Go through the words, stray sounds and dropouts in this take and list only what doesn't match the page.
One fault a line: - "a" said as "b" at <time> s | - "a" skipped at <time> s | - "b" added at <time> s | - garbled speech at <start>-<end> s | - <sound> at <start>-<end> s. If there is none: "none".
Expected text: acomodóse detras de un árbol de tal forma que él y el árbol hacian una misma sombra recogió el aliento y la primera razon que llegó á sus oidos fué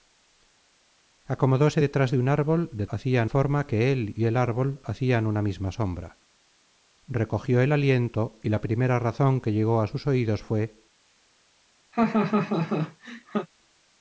- "tal" said as "hacian" at 2.9 s
- laugh at 11.9-13.5 s